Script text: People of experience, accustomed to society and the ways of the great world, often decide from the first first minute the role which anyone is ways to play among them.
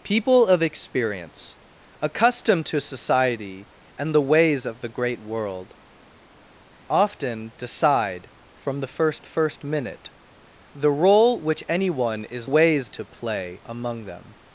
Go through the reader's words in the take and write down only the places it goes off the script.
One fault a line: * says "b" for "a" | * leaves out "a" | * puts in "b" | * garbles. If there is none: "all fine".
all fine